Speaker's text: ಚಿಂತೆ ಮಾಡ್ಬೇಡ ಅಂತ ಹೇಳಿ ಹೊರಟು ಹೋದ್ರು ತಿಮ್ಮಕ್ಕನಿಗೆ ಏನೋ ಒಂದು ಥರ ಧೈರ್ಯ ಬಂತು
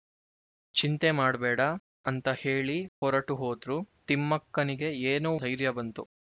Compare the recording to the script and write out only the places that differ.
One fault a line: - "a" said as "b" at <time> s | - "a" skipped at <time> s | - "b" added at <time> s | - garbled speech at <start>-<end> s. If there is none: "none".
- "ಒಂದು ಥರ" skipped at 5.3 s